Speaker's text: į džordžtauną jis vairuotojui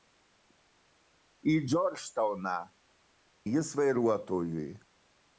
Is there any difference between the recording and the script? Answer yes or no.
no